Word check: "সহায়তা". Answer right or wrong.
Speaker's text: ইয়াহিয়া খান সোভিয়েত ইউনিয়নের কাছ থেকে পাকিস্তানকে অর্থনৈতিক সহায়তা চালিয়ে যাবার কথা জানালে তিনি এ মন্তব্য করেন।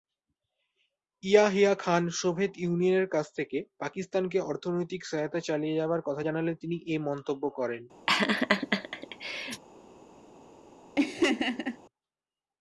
right